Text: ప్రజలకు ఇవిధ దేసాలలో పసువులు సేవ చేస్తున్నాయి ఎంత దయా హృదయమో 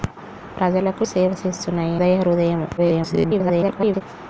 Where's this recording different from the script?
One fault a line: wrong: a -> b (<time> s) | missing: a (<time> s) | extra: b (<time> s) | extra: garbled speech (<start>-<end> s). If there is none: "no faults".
missing: ఇవిధ దేసాలలో పసువులు (1.0 s)
missing: ఎంత (2.0 s)
extra: garbled speech (2.8-4.0 s)